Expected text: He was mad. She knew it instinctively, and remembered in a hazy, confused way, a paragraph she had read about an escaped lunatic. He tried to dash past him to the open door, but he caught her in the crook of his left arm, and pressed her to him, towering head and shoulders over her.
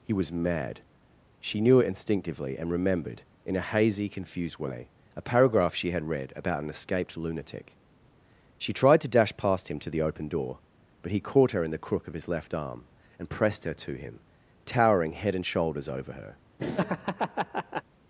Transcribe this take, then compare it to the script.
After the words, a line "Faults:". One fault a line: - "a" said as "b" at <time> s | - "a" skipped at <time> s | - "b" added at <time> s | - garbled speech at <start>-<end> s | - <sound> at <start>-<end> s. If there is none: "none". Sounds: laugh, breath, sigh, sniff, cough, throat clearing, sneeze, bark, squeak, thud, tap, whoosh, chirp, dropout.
He was mad. She knew it instinctively, and remembered in a hazy, confused way, a paragraph she had read about an escaped lunatic. She tried to dash past him to the open door, but he caught her in the crook of his left arm, and pressed her to him, towering head and shoulders over her.
Faults:
- "He" said as "She" at 8.6 s
- laugh at 16.6-17.8 s